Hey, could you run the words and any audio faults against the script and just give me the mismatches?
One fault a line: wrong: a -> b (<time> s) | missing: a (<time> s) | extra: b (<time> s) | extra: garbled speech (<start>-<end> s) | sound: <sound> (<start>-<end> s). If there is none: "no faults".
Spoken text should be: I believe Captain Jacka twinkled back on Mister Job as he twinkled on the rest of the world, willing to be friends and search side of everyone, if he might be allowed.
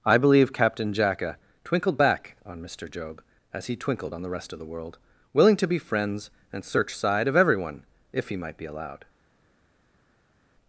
no faults